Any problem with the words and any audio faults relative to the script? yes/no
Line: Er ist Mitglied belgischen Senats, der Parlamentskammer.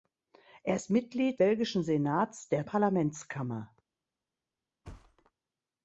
yes